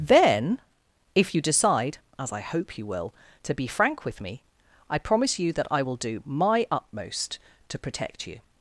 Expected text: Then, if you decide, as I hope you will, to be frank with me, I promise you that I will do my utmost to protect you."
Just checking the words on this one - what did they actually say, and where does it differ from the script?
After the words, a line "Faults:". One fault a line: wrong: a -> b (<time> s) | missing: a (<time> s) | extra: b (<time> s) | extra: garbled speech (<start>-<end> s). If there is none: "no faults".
Then, if you decide, as I hope you will, to be frank with me, I promise you that I will do my utmost to protect you."
Faults:
no faults